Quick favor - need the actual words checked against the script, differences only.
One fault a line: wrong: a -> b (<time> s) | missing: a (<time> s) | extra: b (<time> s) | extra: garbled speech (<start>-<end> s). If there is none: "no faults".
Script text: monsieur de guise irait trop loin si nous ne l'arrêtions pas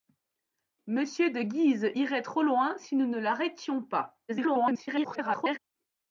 extra: garbled speech (4.3-5.6 s)